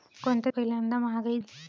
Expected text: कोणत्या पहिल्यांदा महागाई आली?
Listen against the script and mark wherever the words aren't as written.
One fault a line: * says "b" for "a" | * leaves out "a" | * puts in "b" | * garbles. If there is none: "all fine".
all fine